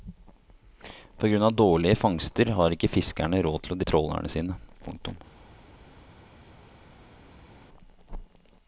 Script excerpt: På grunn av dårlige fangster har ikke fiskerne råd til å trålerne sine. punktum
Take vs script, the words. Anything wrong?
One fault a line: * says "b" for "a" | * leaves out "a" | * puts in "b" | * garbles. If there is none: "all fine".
all fine